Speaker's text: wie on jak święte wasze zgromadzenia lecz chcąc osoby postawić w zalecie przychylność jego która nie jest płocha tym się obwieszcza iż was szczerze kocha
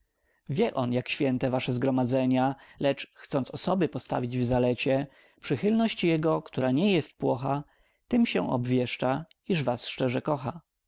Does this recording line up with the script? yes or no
yes